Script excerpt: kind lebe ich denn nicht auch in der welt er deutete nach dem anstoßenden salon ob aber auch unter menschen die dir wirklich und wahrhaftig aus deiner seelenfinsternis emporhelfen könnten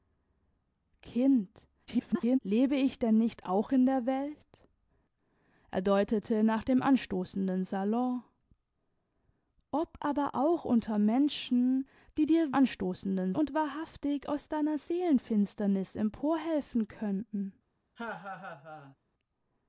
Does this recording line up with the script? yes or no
no